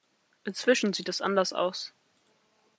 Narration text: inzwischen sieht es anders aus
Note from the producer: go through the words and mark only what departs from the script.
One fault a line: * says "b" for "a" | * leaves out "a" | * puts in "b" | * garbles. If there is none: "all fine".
all fine